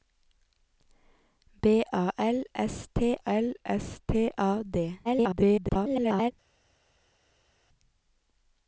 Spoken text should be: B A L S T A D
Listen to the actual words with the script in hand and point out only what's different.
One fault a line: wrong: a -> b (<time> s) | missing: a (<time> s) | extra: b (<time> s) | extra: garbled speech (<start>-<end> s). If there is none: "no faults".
extra: L S T (3.2 s)
extra: garbled speech (5.0-6.3 s)